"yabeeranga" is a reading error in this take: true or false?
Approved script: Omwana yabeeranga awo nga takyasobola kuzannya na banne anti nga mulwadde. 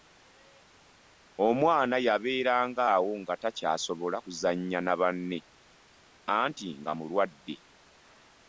false